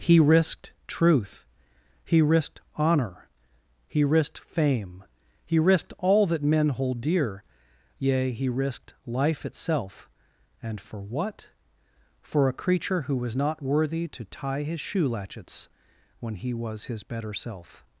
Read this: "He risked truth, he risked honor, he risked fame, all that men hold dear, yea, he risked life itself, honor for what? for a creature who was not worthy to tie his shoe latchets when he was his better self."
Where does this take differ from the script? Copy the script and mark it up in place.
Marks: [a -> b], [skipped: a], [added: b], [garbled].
"He risked truth, he risked honor, he risked fame, [added: he risked] all that men hold dear, yea, he risked life itself, [honor -> and] for what? for a creature who was not worthy to tie his shoe latchets when he was his better self."